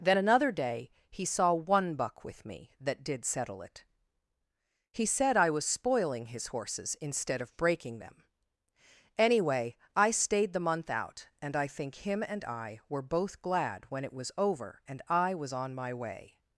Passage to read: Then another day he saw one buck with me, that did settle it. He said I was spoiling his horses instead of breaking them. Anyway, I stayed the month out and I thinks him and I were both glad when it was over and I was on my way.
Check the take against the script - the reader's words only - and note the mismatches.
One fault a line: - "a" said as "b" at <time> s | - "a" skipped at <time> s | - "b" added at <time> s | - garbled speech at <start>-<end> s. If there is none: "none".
- "thinks" said as "think" at 11.7 s